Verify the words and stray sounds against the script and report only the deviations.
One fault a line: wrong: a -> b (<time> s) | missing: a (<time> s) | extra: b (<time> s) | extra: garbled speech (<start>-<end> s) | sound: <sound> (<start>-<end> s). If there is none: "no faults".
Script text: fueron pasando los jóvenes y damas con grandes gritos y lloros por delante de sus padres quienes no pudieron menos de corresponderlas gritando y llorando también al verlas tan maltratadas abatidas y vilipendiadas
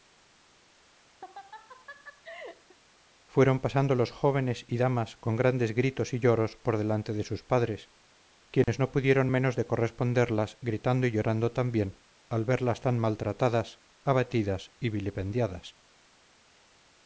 sound: laugh (1.2-2.8 s)
sound: dropout (8.6-8.7 s)